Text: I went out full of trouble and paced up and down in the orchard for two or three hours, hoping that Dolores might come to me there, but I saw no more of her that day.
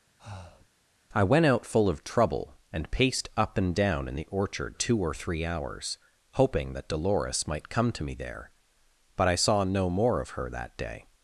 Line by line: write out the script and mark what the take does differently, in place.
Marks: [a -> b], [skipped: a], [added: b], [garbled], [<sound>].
[breath] I went out full of trouble and paced up and down in the orchard [skipped: for] two or three hours, hoping that Dolores might come to me there, but I saw no more of her that day.